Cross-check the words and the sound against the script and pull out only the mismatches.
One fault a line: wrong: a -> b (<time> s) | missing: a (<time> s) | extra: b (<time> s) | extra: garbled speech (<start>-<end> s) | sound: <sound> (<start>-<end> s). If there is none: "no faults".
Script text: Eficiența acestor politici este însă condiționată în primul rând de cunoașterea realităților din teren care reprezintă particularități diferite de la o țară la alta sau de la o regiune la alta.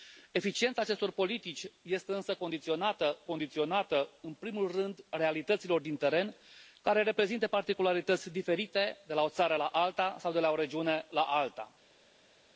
extra: condiționată (3.2 s)
missing: de cunoașterea (5.0 s)